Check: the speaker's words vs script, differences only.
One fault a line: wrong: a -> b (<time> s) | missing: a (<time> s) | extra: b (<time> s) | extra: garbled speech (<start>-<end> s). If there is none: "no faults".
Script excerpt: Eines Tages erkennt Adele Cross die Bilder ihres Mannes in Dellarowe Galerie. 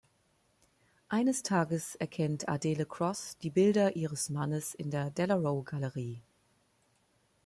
extra: der (4.9 s)